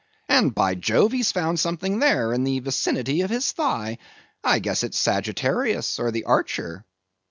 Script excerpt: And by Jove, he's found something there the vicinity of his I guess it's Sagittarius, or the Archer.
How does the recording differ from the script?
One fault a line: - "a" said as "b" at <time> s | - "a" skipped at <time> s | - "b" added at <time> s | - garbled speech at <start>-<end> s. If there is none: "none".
- "in" added at 2.3 s
- "thigh" added at 3.5 s